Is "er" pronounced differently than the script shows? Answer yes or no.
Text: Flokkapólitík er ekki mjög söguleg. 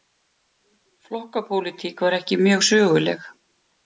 yes